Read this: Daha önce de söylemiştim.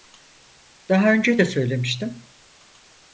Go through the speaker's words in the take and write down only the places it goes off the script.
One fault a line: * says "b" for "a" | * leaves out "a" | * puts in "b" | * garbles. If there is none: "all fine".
all fine